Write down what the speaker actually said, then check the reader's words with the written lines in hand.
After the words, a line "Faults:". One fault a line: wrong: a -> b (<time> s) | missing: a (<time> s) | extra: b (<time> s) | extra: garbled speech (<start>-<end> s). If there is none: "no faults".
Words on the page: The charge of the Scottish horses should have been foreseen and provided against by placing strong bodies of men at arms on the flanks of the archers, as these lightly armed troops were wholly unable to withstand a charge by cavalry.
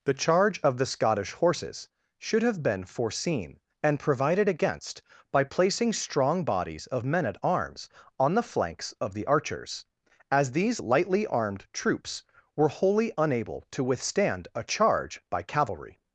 The charge of the Scottish horses should have been foreseen and provided against by placing strong bodies of men at arms on the flanks of the archers, as these lightly armed troops were wholly unable to withstand a charge by cavalry.
Faults:
no faults